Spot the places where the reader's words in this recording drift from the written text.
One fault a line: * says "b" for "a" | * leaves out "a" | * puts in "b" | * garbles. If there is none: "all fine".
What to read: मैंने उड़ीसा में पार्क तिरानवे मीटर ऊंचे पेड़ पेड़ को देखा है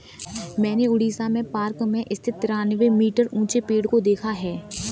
* puts in "में स्थित"
* leaves out "पेड़"